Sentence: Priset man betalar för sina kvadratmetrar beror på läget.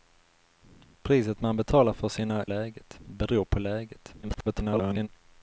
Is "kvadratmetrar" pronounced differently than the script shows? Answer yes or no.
yes